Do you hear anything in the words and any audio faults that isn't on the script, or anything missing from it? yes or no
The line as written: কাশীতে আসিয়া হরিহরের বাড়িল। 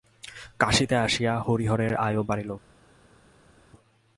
yes